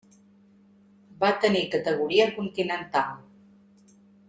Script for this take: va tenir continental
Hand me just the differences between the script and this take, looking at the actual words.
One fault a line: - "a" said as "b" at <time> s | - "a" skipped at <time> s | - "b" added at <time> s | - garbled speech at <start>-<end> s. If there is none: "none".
- "categoria" added at 1.8 s